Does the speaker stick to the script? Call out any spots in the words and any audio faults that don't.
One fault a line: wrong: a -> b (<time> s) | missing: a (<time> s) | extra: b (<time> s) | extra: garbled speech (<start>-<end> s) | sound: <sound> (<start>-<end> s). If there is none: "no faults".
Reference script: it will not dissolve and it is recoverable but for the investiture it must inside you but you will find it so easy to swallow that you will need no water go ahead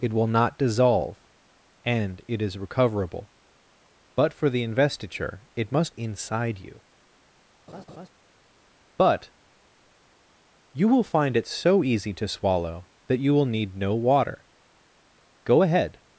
sound: laugh (7.7-8.1 s)